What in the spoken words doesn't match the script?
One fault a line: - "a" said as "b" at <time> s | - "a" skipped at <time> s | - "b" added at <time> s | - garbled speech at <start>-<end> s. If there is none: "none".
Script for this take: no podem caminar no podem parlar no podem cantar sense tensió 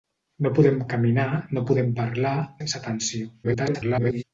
- "no podem cantar" skipped at 2.4 s
- garbled speech at 3.4-4.2 s